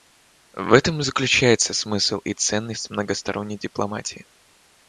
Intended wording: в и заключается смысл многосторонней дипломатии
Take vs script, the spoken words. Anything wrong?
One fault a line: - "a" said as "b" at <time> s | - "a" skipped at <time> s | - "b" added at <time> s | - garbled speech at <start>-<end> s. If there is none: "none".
- "этом" added at 0.7 s
- "и ценность" added at 2.2 s